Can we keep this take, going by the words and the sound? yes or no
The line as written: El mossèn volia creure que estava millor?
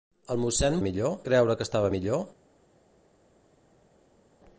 no